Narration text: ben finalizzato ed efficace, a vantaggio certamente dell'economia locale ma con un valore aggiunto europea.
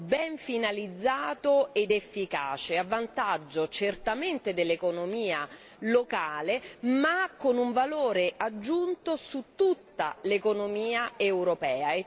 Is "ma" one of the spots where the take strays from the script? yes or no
no